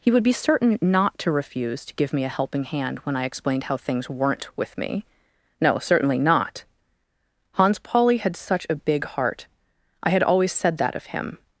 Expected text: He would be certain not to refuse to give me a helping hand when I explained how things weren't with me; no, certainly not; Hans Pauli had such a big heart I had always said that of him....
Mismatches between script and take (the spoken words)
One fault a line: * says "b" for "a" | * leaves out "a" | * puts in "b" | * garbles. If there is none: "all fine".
all fine